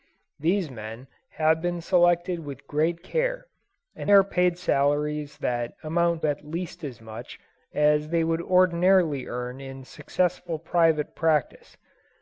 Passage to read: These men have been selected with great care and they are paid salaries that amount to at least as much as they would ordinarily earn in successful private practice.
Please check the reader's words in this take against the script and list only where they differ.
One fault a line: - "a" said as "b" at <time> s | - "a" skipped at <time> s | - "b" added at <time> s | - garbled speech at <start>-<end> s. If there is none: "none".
- "they" skipped at 4.1 s
- "to" skipped at 6.2 s